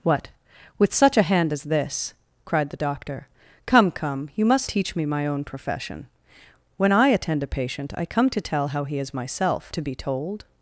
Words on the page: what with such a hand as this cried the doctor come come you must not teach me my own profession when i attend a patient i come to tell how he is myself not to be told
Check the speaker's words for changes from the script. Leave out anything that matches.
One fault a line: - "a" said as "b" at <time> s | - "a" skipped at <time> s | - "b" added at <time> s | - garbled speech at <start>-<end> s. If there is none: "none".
- "not" skipped at 4.7 s
- "not" skipped at 9.7 s